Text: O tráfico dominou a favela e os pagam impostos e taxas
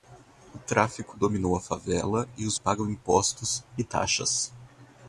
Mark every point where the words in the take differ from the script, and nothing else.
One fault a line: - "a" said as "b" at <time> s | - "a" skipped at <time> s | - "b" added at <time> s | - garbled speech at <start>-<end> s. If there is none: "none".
none